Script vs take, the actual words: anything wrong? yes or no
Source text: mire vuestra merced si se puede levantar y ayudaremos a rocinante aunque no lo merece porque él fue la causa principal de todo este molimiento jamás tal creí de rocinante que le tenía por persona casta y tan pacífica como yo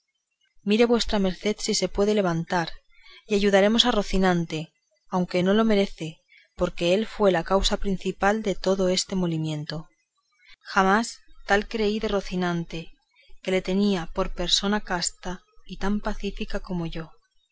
no